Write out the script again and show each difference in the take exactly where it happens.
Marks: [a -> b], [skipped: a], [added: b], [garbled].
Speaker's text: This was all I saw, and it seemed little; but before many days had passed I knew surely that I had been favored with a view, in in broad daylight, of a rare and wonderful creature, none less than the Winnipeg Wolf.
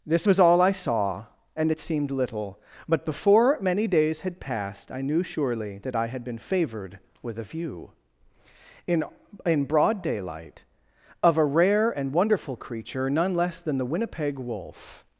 This was all I saw, and it seemed little; but before many days had passed I knew surely that I had been favored with a view, in in broad daylight, of a rare and wonderful creature, none less than the Winnipeg Wolf.